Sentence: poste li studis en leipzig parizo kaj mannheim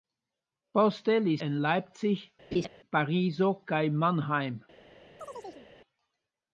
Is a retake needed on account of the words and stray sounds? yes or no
yes